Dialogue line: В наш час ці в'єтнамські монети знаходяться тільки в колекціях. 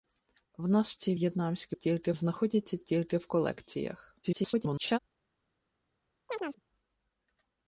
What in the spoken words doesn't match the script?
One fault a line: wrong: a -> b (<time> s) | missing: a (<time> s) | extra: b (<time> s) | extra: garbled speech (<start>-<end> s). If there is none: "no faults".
missing: час (0.9 s)
wrong: монети -> тільки (1.7 s)
extra: garbled speech (4.2-5.0 s)